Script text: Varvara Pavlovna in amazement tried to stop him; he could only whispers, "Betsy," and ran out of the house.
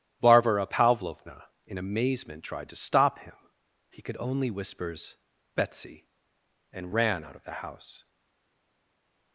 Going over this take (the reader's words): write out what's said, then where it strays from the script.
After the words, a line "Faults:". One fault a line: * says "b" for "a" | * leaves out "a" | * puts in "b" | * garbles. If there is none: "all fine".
Varvara Pavlovna in amazement tried to stop him; he could only whispers, "Betsy," and ran out of the house.
Faults:
all fine